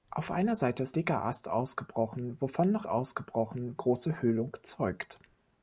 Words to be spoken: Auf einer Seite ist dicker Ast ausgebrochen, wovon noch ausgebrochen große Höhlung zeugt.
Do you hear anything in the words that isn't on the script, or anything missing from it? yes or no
no